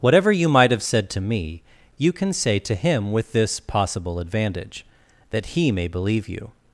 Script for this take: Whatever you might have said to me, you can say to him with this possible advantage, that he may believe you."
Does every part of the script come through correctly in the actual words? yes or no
yes